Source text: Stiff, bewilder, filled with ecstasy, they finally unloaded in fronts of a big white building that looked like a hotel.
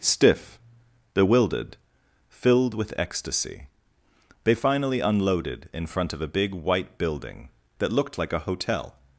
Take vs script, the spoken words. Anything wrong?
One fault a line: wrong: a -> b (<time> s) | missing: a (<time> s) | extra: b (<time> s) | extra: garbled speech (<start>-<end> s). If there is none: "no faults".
wrong: bewilder -> bewildered (1.1 s)
wrong: fronts -> front (5.8 s)